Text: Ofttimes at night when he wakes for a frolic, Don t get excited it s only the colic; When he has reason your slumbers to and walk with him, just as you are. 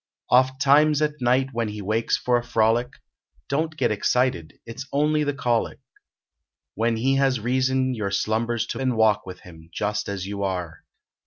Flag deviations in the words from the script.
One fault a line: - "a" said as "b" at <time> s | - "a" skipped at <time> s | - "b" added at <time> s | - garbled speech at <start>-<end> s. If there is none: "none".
none